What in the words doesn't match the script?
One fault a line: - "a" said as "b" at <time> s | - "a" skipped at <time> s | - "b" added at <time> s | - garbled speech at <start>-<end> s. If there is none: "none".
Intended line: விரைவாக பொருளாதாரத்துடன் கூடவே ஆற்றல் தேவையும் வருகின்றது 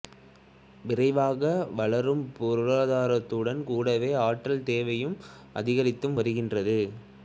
- "வளரும்" added at 1.8 s
- "அதிகரித்து" added at 5.5 s